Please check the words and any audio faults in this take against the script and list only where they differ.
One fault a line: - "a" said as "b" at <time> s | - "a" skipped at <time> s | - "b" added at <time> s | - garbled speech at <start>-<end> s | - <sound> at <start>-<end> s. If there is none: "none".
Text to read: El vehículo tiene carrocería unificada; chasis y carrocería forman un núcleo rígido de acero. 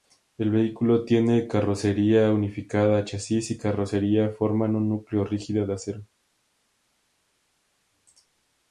none